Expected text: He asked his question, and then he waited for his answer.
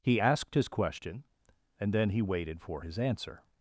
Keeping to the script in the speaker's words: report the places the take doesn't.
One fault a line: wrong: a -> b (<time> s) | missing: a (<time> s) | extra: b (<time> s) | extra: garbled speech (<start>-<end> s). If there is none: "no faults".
no faults